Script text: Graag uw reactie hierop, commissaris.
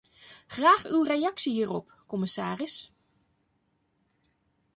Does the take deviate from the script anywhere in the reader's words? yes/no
no